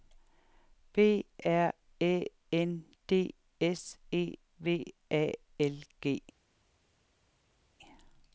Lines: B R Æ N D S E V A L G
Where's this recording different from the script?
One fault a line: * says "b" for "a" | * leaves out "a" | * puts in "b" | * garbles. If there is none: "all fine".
all fine